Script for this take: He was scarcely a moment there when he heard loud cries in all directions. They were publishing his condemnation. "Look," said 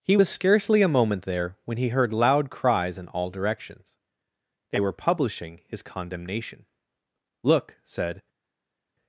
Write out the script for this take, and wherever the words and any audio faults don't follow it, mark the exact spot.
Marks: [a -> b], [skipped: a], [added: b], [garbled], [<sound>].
He was scarcely a moment there when he heard loud cries in all directions. They were publishing his condemnation. "Look," said